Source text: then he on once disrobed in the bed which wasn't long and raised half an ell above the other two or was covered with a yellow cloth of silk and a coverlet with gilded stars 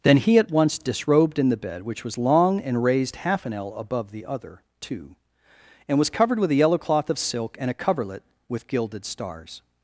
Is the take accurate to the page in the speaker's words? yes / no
no